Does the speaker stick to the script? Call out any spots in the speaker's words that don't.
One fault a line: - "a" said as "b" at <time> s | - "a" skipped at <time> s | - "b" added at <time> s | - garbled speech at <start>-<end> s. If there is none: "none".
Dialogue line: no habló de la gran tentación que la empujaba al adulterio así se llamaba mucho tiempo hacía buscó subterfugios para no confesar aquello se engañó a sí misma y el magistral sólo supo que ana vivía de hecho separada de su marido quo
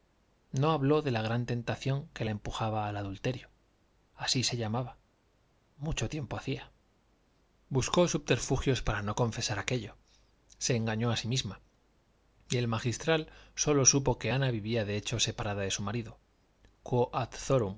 none